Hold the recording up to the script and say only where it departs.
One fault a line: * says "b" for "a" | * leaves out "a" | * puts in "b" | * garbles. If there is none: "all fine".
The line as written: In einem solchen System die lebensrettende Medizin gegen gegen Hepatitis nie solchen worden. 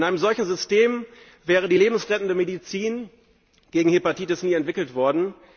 * puts in "wäre"
* leaves out "gegen"
* says "entwickelt" for "solchen"